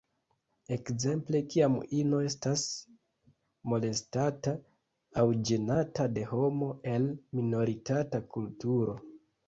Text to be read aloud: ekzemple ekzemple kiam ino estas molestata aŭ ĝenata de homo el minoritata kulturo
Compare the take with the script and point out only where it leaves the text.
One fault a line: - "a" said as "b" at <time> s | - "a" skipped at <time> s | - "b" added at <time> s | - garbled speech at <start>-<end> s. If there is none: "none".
- "ekzemple" skipped at 1.4 s